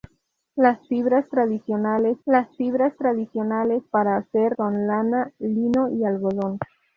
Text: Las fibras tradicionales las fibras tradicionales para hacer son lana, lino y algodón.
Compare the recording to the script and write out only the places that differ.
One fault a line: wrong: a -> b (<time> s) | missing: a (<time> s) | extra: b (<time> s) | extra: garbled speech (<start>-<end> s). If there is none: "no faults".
no faults